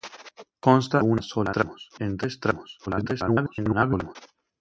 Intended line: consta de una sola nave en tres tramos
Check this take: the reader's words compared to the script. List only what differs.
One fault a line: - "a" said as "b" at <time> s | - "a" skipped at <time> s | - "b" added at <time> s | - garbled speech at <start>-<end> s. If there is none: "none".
- "de" skipped at 1.0 s
- "nave" said as "tramos" at 1.5 s
- garbled speech at 2.9-4.2 s